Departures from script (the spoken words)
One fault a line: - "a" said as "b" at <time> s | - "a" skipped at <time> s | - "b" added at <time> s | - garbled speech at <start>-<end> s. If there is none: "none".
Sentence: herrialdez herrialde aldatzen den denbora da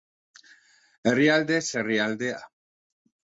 - "aldatzen den denbora" skipped at 2.3 s